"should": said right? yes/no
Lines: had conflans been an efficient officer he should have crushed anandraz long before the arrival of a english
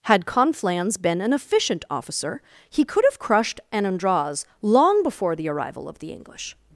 no